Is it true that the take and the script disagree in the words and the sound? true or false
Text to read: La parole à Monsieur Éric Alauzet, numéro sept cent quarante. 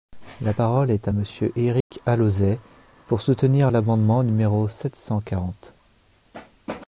true